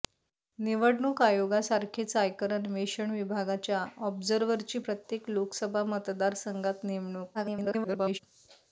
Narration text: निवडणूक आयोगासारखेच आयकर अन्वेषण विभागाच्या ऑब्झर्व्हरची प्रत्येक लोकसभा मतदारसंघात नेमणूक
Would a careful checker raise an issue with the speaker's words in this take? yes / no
yes